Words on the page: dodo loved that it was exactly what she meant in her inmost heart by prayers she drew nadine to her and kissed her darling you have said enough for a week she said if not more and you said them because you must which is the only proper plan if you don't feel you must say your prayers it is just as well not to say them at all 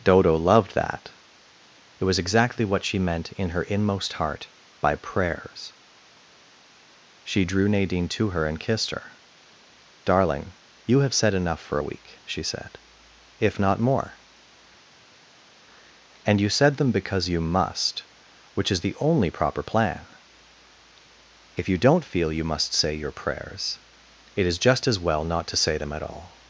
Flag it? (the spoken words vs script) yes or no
no